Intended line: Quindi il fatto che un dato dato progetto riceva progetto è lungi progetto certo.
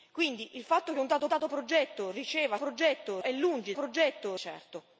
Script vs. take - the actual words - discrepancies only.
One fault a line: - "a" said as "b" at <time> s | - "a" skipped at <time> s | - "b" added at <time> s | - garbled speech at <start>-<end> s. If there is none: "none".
none